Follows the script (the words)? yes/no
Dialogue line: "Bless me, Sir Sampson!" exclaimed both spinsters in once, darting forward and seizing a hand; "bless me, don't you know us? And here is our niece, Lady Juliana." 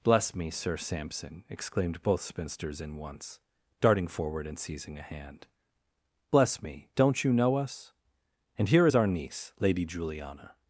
yes